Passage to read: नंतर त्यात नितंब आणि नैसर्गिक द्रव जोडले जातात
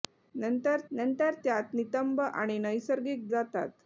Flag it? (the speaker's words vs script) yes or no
yes